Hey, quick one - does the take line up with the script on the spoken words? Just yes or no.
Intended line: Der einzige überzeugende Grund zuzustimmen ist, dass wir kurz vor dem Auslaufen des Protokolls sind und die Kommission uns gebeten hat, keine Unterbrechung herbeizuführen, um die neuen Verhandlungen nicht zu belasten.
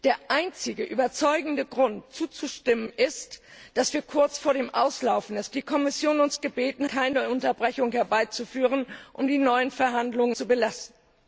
no